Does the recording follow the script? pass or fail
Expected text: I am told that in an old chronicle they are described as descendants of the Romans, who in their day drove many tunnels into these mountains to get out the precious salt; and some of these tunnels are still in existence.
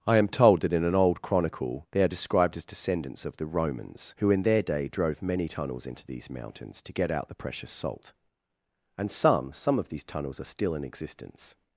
fail